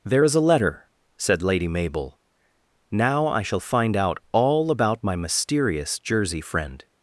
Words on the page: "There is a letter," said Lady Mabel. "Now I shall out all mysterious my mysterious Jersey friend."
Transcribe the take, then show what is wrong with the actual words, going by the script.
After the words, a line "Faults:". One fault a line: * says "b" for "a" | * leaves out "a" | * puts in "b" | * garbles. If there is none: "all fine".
"There is a letter," said Lady Mabel. "Now I shall find out all about my mysterious Jersey friend."
Faults:
* puts in "find"
* says "about" for "mysterious"